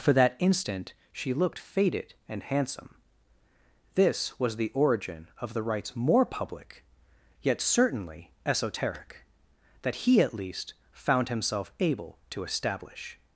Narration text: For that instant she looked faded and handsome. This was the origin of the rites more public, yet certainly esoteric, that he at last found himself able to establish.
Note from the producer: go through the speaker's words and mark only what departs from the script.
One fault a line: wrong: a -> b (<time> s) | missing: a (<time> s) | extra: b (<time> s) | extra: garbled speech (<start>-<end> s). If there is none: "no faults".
wrong: last -> least (10.3 s)